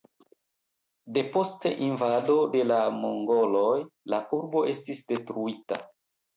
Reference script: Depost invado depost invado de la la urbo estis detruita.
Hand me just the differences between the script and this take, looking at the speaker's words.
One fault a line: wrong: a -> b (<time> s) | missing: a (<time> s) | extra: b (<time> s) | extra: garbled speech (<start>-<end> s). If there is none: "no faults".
missing: depost invado (2.4 s)
extra: mongoloj (3.0 s)